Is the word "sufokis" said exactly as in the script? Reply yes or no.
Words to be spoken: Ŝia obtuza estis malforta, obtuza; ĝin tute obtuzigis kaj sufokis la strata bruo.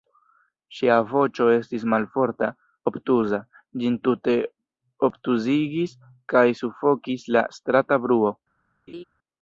yes